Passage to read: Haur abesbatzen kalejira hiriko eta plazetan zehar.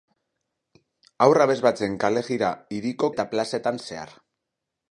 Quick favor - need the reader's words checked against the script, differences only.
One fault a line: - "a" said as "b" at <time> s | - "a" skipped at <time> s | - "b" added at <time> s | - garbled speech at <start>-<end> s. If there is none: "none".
none